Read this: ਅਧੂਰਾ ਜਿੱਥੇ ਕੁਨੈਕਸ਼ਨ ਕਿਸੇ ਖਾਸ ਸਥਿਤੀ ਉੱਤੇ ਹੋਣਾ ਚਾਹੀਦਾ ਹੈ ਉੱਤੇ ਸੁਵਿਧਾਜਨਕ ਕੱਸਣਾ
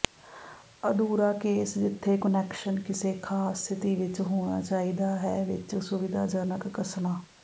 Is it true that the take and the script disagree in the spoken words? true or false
true